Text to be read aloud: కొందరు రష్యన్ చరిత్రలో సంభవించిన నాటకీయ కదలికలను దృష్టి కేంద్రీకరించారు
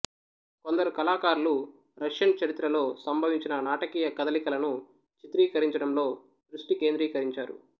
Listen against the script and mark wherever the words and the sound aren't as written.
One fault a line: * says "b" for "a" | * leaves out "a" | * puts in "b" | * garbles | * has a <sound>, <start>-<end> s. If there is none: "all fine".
* puts in "కళాకారులు"
* puts in "చిత్రీకరించడంలో"